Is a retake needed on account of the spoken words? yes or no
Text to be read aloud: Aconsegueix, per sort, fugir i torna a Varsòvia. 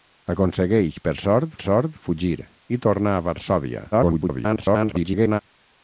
yes